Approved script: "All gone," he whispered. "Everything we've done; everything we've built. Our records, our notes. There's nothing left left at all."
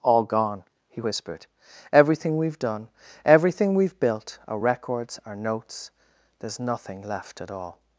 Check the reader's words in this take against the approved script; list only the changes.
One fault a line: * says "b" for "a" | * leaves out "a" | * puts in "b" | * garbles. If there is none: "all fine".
* leaves out "left"